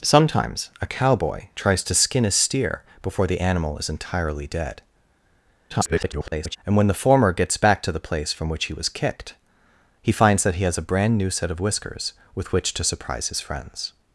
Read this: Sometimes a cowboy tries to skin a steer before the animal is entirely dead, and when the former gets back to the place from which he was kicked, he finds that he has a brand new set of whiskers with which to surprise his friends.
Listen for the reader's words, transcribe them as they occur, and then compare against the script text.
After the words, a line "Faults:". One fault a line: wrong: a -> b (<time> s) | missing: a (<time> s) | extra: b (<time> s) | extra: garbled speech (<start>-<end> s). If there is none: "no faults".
Sometimes a cowboy tries to skin a steer before the animal is entirely dead, [garbled] and when the former gets back to the place from which he was kicked, he finds that he has a brand new set of whiskers with which to surprise his friends.
Faults:
extra: garbled speech (5.7-6.6 s)